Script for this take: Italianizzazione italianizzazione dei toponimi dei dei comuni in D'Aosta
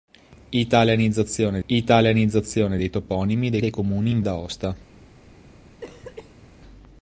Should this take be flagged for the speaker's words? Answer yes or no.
no